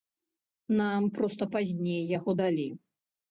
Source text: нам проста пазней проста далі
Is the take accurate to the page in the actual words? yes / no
no